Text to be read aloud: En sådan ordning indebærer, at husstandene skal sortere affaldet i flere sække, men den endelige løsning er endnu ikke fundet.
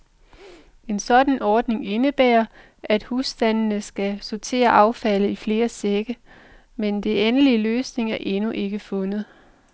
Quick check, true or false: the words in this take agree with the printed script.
true